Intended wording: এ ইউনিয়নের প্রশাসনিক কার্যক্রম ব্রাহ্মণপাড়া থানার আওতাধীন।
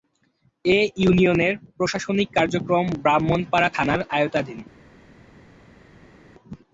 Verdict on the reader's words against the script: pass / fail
pass